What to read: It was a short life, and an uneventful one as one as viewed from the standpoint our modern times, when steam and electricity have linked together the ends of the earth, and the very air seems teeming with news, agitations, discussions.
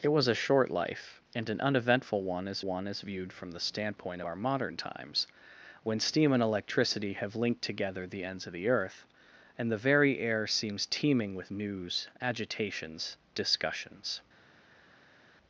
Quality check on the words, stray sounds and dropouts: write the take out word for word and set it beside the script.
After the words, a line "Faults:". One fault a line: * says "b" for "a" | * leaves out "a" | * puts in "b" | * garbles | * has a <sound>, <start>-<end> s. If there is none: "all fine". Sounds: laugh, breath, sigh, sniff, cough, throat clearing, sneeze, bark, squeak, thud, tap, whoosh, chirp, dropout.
It was a short life, and an uneventful one as one as viewed from the standpoint our modern times, when steam and electricity have linked together the ends of the earth, and the very air seems teeming with news, agitations, discussions.
Faults:
all fine